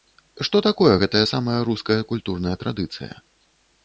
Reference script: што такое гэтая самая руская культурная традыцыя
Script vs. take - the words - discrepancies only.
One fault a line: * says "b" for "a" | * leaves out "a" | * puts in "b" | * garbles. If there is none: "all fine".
all fine